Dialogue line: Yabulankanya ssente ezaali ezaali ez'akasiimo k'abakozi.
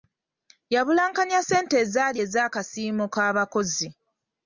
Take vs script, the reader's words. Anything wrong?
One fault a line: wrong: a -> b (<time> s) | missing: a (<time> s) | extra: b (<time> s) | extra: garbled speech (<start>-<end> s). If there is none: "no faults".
missing: ezaali (2.2 s)